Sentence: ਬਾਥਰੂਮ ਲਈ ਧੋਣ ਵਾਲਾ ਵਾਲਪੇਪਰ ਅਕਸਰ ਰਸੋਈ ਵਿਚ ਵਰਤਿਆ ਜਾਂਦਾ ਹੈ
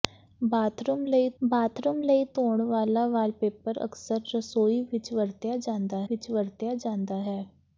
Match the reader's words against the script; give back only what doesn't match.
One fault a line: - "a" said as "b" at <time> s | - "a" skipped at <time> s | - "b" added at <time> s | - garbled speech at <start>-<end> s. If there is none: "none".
- "ਬਾਥਰੂਮ ਲਈ" added at 1.4 s
- "ਵਿਚ ਵਰਤਿਆ ਜਾਂਦਾ" added at 6.1 s